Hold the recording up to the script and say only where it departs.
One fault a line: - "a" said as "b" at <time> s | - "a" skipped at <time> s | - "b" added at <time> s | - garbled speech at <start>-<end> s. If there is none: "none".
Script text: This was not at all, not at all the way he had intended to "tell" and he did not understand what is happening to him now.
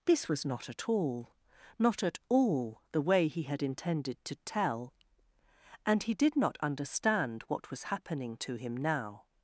- "is" said as "was" at 7.7 s